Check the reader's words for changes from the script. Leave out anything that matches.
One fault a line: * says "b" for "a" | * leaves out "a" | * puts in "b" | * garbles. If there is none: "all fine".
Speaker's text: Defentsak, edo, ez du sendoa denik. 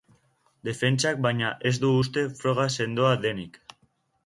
* says "baina" for "edo"
* puts in "uste froga"